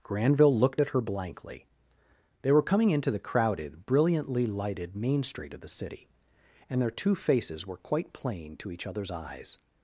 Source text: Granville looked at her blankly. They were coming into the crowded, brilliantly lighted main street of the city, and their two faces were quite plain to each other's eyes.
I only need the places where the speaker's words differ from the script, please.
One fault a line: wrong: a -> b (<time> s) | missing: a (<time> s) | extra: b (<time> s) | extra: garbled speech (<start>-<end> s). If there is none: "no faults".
no faults